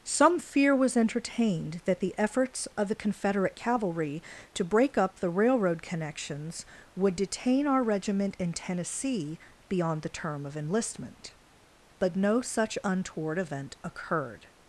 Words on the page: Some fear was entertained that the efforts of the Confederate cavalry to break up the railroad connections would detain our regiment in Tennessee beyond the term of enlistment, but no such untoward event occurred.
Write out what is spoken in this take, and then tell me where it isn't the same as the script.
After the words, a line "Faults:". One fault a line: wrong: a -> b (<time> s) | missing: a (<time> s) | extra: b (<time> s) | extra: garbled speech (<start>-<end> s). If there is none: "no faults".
Some fear was entertained that the efforts of the Confederate cavalry to break up the railroad connections would detain our regiment in Tennessee beyond the term of enlistment, but no such untoward event occurred.
Faults:
no faults